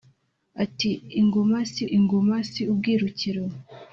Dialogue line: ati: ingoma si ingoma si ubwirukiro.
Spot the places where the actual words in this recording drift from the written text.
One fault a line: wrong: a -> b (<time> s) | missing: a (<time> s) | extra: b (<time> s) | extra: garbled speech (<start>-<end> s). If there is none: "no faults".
no faults